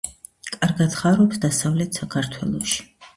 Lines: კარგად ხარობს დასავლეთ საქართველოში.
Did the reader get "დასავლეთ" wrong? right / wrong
right